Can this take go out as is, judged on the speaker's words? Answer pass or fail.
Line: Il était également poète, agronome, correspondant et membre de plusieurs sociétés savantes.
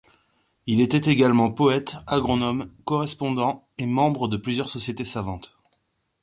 pass